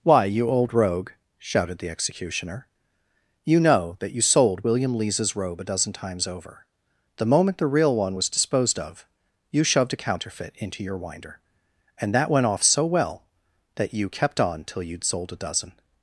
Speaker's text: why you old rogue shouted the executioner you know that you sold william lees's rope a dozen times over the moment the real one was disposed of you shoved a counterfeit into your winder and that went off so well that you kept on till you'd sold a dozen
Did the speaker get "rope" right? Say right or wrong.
wrong